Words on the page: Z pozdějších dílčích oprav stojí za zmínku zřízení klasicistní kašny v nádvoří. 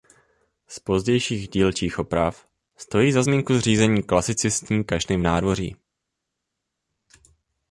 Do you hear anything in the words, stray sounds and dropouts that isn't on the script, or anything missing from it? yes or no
no